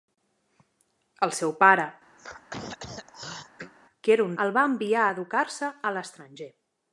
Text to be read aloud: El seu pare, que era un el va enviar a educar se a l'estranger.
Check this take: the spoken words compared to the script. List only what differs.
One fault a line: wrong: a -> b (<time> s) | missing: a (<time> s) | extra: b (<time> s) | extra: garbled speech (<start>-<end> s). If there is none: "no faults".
no faults